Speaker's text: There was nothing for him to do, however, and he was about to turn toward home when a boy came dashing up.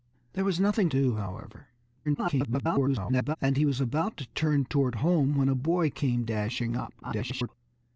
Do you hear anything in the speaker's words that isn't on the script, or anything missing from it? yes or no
yes